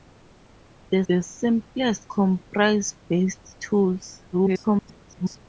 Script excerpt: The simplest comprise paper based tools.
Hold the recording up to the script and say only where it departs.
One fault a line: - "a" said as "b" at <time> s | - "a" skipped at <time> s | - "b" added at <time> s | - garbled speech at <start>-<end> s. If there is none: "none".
- "the" added at 1.1 s
- "paper" skipped at 2.9 s
- garbled speech at 4.3-5.4 s